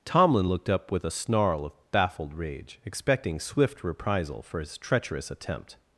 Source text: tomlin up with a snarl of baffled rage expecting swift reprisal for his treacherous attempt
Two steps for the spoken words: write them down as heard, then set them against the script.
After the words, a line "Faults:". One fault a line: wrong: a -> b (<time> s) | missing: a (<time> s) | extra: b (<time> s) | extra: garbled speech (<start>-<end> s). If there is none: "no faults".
tomlin looked up with a snarl of baffled rage expecting swift reprisal for his treacherous attempt
Faults:
extra: looked (0.5 s)